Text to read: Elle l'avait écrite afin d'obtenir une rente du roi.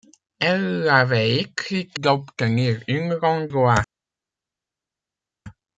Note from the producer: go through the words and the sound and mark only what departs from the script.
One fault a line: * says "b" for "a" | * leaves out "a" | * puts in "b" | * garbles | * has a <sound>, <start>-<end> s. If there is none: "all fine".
* leaves out "afin"
* leaves out "du"